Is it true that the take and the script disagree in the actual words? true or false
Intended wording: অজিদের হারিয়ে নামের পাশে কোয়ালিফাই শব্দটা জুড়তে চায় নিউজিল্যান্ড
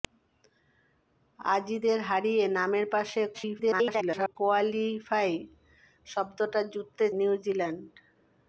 true